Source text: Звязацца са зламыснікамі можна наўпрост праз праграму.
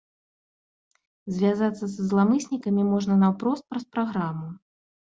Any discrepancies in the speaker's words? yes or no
no